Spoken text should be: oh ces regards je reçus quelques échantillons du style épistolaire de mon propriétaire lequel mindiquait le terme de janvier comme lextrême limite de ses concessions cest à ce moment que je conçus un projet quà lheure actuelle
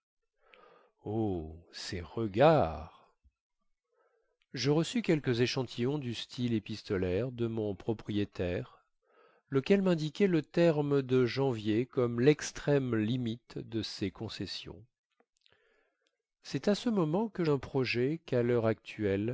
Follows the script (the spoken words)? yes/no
no